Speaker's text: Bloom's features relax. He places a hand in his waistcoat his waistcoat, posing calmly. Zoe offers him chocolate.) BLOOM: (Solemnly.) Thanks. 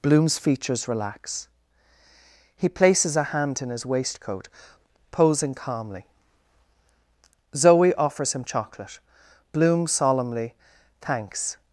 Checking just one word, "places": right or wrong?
right